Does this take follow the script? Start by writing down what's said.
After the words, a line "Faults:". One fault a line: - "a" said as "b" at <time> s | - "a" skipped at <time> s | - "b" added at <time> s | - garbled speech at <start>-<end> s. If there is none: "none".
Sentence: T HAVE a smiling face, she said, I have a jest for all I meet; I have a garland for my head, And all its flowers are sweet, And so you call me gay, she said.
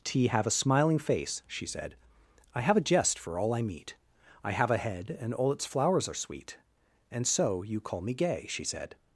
T HAVE a smiling face, she said, I have a jest for all I meet; I have a head, And all its flowers are sweet, And so you call me gay, she said.
Faults:
- "garland for my" skipped at 4.8 s